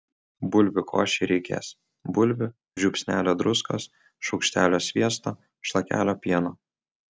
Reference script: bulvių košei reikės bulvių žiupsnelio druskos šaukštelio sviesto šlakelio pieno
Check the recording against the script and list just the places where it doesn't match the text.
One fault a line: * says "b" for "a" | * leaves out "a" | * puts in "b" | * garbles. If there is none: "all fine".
all fine